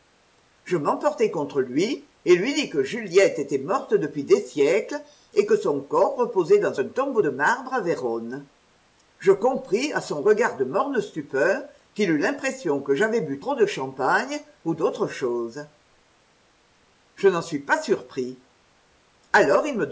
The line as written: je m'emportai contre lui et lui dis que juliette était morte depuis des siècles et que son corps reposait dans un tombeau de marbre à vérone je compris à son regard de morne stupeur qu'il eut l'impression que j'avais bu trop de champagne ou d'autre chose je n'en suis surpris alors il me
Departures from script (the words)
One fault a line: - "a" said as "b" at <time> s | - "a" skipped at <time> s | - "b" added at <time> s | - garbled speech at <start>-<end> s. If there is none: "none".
- "pas" added at 17.6 s